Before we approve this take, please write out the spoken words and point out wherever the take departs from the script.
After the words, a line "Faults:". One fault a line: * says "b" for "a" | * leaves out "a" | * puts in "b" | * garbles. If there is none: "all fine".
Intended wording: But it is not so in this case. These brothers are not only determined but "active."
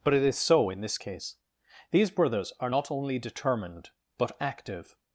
But it is so in this case. These brothers are not only determined but "active."
Faults:
* leaves out "not"